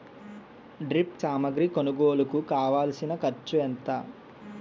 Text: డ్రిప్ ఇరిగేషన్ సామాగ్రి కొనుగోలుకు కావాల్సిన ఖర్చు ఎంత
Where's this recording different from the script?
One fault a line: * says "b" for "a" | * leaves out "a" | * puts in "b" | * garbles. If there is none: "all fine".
* leaves out "ఇరిగేషన్"